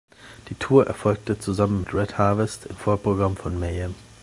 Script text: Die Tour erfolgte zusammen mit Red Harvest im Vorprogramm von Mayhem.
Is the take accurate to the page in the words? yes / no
yes